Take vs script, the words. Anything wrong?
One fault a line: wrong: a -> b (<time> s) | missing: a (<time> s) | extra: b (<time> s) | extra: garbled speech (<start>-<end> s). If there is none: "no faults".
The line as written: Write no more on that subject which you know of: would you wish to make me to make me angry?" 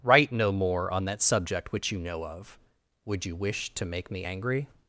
missing: to make me (4.2 s)